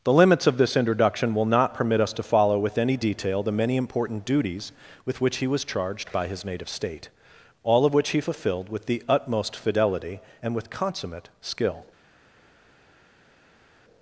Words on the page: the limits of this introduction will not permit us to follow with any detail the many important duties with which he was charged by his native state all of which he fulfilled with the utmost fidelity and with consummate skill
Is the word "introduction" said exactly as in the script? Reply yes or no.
yes